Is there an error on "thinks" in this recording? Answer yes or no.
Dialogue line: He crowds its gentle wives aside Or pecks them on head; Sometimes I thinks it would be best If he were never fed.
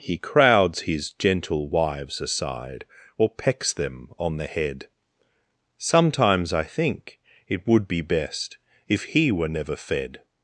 yes